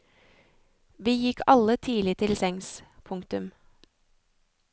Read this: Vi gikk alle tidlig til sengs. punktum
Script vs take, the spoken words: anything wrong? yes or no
no